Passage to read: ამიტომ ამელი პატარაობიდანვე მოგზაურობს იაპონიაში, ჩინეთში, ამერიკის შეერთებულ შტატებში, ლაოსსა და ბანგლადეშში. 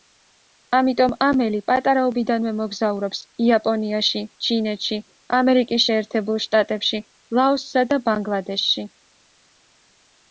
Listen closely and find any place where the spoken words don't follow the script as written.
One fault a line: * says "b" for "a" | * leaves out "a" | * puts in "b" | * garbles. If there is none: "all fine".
all fine